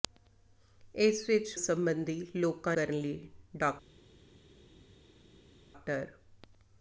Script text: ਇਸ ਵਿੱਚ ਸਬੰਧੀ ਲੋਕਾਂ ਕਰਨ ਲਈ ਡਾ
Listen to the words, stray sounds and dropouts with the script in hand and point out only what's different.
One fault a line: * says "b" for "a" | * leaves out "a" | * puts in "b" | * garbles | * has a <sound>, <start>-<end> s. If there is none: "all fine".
all fine